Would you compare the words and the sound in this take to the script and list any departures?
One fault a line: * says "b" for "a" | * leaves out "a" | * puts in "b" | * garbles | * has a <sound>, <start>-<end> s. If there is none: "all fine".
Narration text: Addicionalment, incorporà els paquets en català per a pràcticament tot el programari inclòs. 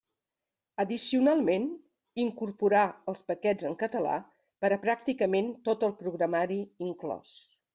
all fine